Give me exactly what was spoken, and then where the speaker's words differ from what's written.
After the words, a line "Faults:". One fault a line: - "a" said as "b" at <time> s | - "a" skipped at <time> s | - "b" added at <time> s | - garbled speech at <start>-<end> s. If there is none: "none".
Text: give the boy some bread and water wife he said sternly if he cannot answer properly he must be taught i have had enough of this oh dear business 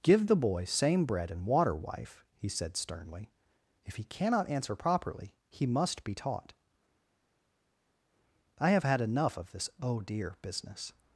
give the boy same bread and water wife he said sternly if he cannot answer properly he must be taught i have had enough of this oh dear business
Faults:
- "some" said as "same" at 0.7 s